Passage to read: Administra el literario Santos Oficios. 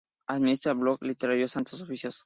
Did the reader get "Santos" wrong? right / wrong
right